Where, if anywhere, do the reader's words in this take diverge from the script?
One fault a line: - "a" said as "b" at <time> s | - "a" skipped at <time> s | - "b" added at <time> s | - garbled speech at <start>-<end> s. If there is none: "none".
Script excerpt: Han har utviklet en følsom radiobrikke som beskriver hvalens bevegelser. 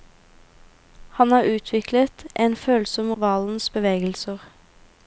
- "radiobrikke som beskriver" skipped at 3.1 s